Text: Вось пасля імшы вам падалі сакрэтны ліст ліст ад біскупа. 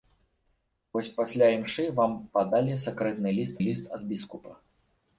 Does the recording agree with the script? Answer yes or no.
yes